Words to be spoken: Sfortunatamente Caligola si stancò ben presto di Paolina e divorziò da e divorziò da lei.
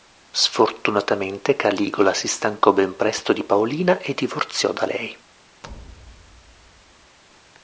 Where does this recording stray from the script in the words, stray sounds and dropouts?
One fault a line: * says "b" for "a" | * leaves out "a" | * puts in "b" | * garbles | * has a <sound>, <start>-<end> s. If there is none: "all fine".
* leaves out "e divorziò da"
* has a thud, 5.6-7.2 s